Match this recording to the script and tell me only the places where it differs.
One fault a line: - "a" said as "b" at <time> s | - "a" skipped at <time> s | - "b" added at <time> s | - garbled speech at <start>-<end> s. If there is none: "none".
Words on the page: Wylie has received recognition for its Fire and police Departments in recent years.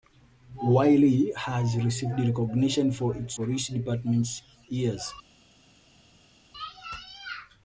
- "Fire and" skipped at 3.4 s
- "in recent" skipped at 4.4 s